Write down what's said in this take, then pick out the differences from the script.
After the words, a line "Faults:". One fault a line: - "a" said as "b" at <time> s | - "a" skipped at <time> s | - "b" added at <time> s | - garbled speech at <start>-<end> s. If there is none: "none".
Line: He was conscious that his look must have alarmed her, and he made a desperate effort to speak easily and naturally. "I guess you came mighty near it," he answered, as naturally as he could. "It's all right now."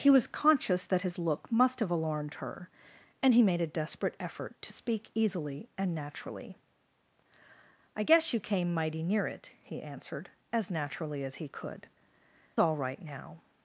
He was conscious that his look must have alarmed her, and he made a desperate effort to speak easily and naturally. "I guess you came mighty near it," he answered, as naturally as he could. "All right now."
Faults:
- "It's" skipped at 11.9 s